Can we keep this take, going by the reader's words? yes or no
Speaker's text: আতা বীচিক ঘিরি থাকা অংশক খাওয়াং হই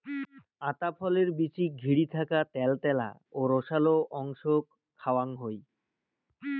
no